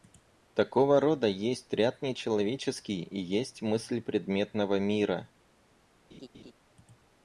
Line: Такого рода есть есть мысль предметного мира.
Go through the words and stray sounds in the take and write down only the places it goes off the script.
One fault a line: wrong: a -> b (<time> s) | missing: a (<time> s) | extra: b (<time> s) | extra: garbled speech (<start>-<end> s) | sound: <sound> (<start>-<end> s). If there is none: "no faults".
extra: ряд нечеловеческий и (1.7 s)
sound: laugh (6.1-6.5 s)